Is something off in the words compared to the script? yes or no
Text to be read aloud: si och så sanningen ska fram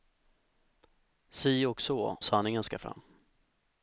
no